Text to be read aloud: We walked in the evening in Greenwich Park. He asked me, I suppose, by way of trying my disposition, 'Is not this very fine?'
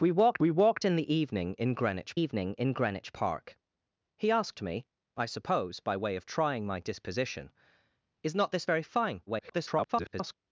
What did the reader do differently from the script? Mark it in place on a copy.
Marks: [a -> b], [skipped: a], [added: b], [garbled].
We walked [added: we walked] in the evening in Greenwich [added: evening in Greenwich] Park. He asked me, I suppose, by way of trying my disposition, 'Is not this very fine?' [garbled]